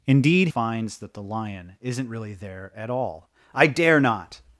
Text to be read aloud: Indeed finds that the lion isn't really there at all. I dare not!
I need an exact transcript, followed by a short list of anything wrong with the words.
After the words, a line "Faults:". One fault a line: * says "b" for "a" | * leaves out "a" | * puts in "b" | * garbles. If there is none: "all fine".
Indeed finds that the lion isn't really there at all. I dare not!
Faults:
all fine